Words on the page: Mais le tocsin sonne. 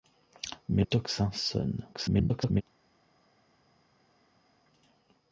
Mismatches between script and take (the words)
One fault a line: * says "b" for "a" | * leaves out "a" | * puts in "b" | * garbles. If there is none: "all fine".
* leaves out "le"
* garbles